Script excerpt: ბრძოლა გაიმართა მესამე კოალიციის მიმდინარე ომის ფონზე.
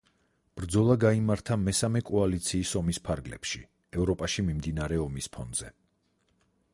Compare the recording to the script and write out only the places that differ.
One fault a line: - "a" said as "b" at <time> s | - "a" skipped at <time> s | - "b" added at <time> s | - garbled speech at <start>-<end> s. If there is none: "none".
- "ომის ფარგლებში ევროპაში" added at 2.8 s